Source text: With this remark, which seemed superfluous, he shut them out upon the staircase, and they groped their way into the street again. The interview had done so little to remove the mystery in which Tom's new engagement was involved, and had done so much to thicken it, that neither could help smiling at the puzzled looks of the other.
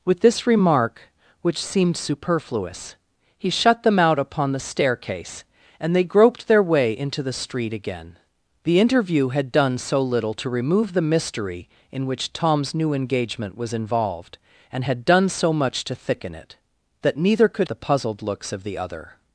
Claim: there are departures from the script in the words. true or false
true